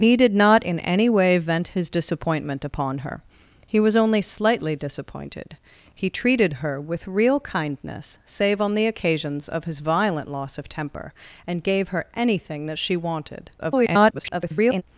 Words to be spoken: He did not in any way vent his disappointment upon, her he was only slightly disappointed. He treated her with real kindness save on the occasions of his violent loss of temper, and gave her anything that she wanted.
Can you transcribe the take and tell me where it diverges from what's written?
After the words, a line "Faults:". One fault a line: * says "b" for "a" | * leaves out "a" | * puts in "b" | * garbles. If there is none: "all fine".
He did not in any way vent his disappointment upon, her he was only slightly disappointed. He treated her with real kindness save on the occasions of his violent loss of temper, and gave her anything that she wanted. [garbled]
Faults:
* garbles